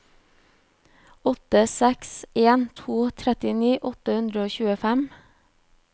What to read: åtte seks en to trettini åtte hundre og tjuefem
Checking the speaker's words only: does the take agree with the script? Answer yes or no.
yes